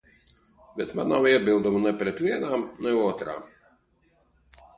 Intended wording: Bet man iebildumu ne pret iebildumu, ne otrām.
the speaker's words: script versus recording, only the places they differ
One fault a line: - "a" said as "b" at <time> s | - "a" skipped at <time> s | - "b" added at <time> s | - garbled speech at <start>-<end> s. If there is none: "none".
- "nav" added at 1.1 s
- "iebildumu" said as "vienām" at 2.2 s